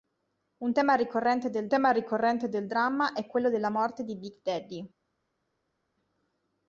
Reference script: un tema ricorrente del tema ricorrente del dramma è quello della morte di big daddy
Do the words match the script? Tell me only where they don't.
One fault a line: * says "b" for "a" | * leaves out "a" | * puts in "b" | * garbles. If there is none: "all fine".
all fine